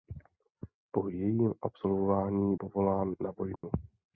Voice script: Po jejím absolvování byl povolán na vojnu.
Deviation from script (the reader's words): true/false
true